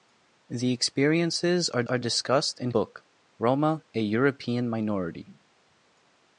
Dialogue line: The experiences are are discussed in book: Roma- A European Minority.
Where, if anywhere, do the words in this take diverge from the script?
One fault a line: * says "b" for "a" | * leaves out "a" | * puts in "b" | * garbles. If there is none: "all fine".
all fine